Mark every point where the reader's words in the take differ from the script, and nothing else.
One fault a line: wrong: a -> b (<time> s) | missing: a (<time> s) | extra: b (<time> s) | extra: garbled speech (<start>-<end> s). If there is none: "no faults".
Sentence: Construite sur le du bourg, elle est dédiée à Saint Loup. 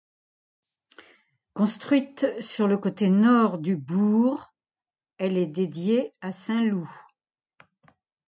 extra: côté nord (2.8 s)